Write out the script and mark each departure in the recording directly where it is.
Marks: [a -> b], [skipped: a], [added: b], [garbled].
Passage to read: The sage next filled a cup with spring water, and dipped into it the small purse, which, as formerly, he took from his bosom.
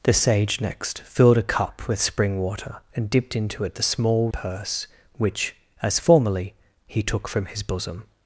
The sage next filled a cup with spring water, and dipped into it the small purse, which, as formerly, he took from his bosom.